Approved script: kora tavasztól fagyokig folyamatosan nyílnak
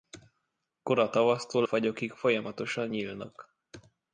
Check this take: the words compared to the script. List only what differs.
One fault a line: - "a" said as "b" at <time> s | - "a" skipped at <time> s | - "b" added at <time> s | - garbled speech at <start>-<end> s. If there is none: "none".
none